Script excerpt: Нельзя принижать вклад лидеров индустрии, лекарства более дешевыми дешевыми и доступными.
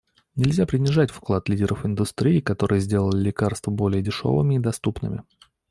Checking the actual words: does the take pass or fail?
fail